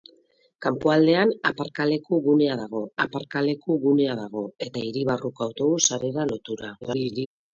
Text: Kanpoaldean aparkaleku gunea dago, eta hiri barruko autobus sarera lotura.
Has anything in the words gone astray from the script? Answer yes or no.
yes